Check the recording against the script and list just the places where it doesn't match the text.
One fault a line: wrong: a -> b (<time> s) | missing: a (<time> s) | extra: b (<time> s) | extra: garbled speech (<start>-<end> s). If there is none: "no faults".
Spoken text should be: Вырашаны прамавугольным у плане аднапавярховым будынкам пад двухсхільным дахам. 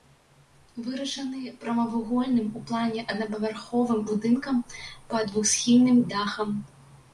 no faults